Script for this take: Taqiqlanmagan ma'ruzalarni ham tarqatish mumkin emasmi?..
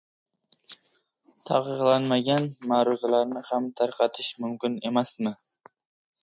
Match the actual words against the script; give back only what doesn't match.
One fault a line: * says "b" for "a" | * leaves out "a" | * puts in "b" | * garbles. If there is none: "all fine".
all fine